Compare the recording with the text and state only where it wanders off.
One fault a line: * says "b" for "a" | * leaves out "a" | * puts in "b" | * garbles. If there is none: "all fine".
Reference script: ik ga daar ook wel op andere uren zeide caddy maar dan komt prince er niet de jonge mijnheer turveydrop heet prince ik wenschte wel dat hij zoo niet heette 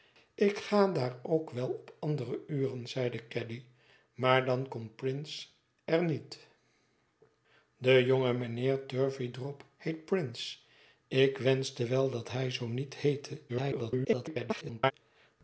* garbles